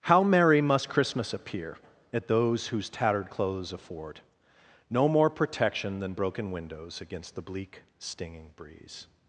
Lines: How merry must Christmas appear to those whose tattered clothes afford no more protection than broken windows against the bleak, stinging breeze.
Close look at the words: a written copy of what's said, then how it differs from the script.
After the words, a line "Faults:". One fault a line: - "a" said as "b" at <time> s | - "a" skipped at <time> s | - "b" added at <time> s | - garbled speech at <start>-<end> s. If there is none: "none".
How merry must Christmas appear at those whose tattered clothes afford no more protection than broken windows against the bleak, stinging breeze.
Faults:
- "to" said as "at" at 2.1 s